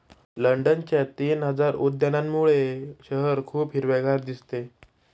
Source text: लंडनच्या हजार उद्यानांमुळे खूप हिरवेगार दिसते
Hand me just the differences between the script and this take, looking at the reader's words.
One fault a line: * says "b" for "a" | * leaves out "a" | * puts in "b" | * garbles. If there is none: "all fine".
* puts in "तीन"
* puts in "शहर"